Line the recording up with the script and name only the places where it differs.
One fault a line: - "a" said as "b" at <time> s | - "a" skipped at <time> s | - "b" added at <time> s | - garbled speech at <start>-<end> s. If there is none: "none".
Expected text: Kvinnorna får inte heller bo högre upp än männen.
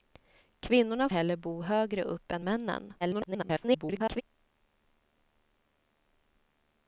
- "får inte" skipped at 1.1 s
- garbled speech at 3.0-4.2 s